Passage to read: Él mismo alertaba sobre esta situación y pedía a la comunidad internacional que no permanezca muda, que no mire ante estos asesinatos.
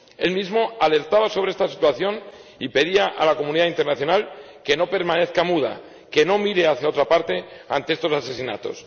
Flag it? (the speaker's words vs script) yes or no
yes